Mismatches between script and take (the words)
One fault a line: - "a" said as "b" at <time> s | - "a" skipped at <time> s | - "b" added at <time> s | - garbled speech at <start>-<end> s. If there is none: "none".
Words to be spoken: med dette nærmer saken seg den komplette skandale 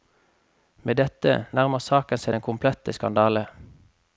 none